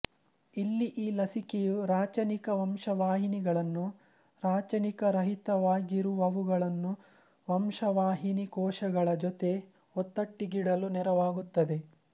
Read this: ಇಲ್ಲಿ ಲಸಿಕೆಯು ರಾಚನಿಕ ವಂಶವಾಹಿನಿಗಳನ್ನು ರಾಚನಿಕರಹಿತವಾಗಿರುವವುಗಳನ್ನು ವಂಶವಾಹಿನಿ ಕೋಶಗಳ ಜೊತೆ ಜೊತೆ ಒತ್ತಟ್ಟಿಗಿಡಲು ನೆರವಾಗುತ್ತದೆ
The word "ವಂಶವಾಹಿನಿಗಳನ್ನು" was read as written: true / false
true